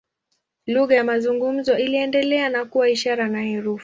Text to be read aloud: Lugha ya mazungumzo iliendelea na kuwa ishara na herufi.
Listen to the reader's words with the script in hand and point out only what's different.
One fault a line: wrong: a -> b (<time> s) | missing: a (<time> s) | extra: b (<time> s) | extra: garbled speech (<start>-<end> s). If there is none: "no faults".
no faults